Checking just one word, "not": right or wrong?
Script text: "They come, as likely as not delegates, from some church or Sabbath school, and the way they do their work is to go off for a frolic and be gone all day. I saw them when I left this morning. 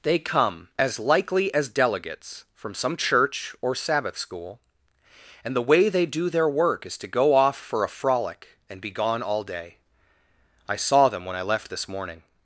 wrong